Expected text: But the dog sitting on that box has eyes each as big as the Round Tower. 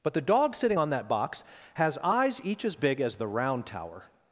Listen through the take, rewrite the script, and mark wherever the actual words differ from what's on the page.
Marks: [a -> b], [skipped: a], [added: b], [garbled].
But the dog sitting on that box has eyes each as big as the Round Tower.